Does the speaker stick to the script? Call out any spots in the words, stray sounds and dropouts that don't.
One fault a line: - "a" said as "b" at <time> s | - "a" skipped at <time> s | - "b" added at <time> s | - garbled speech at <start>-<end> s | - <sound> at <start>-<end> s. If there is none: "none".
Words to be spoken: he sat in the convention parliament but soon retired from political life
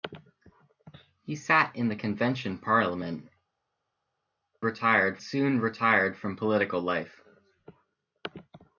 - "but" said as "retired" at 4.6 s